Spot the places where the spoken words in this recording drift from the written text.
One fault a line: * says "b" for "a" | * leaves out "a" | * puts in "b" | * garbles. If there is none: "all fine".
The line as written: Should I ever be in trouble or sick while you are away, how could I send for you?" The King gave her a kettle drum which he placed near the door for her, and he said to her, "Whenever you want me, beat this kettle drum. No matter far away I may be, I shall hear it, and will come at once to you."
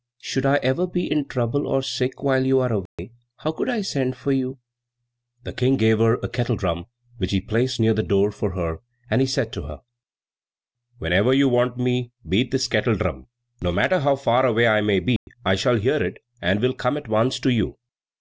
* puts in "how"